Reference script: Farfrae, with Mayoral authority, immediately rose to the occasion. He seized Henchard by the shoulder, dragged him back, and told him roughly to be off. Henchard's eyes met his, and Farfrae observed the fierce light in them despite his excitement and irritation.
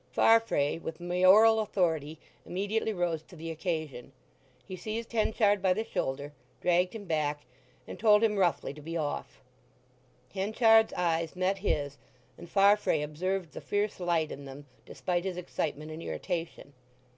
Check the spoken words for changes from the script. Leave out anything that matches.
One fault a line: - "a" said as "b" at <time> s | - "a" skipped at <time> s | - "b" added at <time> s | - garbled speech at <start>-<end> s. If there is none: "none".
none